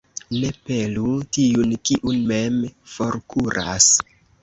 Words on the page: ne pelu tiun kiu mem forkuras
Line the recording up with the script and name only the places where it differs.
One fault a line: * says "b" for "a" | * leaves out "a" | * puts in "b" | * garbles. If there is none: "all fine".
all fine